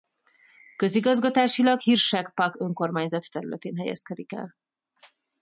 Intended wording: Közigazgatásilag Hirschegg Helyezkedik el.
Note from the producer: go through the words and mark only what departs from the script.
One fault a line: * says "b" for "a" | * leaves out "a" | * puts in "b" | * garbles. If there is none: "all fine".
* puts in "Pack önkormányzat területén"